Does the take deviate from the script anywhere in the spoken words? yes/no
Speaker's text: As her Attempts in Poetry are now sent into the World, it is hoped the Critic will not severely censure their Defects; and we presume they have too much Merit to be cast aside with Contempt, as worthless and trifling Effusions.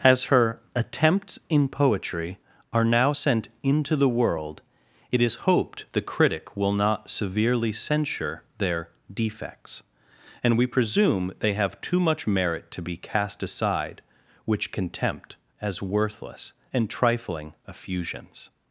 yes